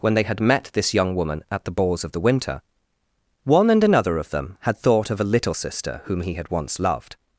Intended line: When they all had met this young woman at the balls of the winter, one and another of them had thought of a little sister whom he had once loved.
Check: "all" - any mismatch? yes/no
yes